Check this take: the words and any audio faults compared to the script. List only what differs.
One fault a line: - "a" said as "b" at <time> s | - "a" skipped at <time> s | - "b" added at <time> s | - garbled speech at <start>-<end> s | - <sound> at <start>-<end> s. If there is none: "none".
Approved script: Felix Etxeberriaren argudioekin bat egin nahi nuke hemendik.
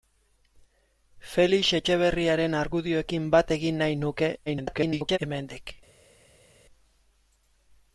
- garbled speech at 4.5-5.2 s